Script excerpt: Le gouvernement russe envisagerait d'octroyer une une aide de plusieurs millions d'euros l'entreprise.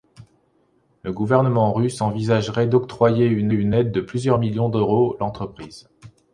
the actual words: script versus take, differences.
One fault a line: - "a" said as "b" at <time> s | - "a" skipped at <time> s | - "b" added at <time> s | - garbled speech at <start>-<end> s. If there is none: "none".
none